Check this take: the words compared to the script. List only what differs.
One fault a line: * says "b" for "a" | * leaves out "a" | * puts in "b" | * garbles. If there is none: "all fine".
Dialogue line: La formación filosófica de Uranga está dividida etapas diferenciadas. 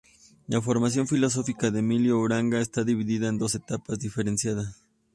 * puts in "Emilio"
* puts in "en dos"